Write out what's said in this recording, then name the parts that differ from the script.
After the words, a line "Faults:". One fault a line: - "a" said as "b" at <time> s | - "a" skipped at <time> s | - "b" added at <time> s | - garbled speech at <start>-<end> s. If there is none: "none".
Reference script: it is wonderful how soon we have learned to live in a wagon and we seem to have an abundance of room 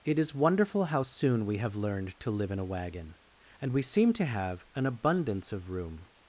it is wonderful how soon we have learned to live in a wagon and we seem to have an abundance of room
Faults:
none